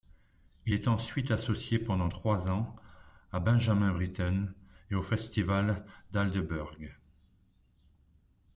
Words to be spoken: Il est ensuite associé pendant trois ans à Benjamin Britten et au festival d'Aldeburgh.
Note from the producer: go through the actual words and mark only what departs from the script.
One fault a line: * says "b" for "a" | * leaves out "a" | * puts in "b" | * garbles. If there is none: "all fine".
all fine